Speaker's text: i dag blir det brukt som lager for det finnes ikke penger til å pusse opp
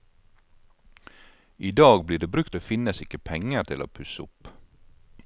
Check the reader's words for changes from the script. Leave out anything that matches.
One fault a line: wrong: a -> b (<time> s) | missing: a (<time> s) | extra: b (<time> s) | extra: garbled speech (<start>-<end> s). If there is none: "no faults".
missing: som lager for (2.5 s)